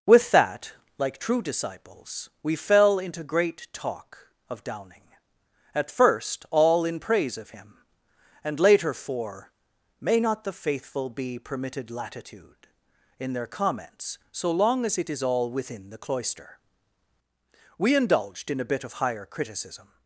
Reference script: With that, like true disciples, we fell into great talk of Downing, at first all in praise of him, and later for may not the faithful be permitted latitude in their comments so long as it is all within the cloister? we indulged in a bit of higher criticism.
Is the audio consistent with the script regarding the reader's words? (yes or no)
yes